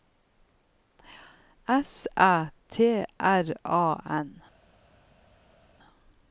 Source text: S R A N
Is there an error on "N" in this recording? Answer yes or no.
no